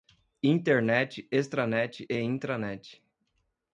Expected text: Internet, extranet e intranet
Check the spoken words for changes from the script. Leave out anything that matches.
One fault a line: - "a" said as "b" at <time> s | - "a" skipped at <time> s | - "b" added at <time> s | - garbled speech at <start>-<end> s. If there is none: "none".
none